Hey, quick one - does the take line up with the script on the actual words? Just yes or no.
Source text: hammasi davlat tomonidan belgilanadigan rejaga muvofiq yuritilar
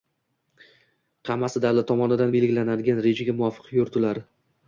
yes